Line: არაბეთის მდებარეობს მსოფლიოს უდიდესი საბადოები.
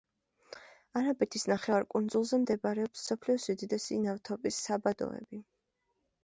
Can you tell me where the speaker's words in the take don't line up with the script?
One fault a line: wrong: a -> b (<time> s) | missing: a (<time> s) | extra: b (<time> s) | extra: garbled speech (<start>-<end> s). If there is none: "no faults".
extra: ნახევარკუნძულზე (1.5 s)
extra: ნავთობის (4.0 s)